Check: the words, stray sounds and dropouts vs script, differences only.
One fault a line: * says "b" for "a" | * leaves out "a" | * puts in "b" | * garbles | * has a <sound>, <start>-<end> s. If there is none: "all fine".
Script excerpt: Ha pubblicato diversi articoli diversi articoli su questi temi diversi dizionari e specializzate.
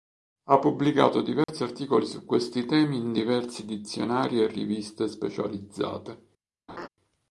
* has a dropout, 1.4-1.5 s
* leaves out "diversi articoli"
* puts in "in"
* puts in "riviste"
* has a laugh, 6.7-6.9 s